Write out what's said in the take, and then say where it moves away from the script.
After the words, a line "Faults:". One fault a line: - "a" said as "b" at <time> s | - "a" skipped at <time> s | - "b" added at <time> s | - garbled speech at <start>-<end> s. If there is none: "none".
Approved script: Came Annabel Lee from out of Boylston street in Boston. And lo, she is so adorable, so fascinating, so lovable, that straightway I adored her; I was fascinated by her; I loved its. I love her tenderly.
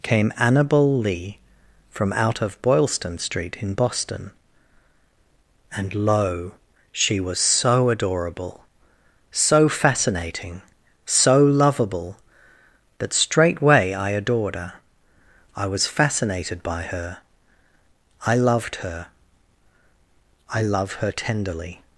Came Annabel Lee from out of Boylston street in Boston. And lo, she was so adorable, so fascinating, so lovable, that straightway I adored her; I was fascinated by her; I loved her. I love her tenderly.
Faults:
- "is" said as "was" at 7.2 s
- "its" said as "her" at 18.8 s